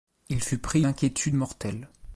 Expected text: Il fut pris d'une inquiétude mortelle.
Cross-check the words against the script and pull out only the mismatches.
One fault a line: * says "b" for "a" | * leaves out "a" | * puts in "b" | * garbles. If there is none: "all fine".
* leaves out "d'une"